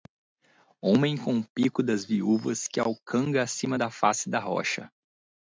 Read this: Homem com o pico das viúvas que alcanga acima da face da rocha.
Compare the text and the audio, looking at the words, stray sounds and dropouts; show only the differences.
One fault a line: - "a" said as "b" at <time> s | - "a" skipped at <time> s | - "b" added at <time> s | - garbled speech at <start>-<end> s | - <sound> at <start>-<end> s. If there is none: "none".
none